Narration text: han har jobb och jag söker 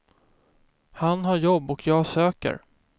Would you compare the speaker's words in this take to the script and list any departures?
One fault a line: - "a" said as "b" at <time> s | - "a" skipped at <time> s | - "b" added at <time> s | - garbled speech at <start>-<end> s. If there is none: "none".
none